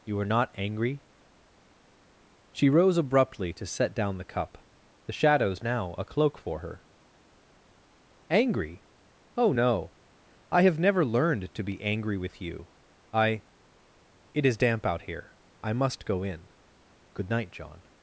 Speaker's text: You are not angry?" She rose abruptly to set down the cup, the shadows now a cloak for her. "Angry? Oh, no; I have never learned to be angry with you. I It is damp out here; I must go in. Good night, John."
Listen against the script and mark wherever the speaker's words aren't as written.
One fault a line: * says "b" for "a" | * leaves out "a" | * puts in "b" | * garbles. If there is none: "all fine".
all fine